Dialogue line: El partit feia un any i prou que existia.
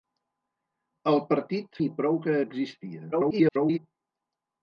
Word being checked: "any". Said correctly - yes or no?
no